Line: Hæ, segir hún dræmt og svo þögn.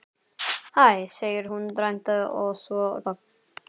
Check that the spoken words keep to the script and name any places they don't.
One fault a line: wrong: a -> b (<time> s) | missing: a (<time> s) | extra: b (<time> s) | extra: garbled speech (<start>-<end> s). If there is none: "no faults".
no faults